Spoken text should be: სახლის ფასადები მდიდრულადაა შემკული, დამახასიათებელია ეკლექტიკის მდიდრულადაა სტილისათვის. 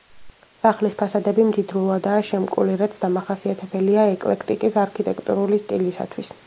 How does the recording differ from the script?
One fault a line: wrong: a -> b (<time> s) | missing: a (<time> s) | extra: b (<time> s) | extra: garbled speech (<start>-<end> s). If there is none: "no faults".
extra: რაც (2.8 s)
wrong: მდიდრულადაა -> არქიტექტურული (4.9 s)